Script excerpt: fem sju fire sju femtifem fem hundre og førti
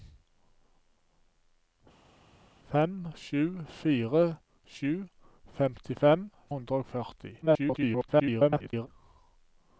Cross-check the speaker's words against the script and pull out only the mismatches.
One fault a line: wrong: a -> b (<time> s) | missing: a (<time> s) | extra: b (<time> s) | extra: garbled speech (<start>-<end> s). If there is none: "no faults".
missing: fem (6.2 s)
extra: garbled speech (7.4-8.9 s)